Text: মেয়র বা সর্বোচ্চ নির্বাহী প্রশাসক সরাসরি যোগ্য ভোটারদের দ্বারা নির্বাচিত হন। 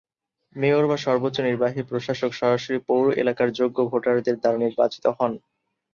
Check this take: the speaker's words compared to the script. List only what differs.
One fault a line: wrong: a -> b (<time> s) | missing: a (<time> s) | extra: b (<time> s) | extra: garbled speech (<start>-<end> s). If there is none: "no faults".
extra: পৌর এলাকার (2.9 s)